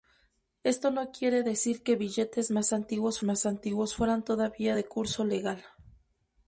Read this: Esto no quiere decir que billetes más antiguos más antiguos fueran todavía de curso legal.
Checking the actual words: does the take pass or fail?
pass